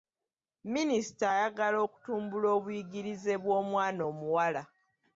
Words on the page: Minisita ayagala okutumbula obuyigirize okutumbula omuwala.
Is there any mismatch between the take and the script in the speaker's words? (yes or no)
yes